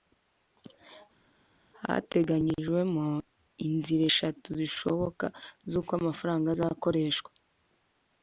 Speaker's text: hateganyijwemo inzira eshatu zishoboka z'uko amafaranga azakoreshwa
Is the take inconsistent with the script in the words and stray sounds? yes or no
no